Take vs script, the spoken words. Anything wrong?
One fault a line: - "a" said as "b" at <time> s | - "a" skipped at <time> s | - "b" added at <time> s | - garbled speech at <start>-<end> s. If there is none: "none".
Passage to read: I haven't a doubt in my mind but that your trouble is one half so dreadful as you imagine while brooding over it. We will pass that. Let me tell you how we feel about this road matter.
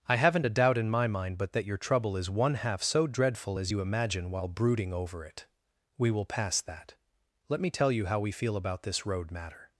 none